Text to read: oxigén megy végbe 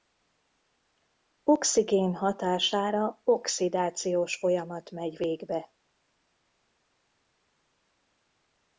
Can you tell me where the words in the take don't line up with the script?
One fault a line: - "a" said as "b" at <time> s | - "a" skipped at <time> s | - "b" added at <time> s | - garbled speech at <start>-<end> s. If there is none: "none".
- "hatására oxidációs folyamat" added at 2.1 s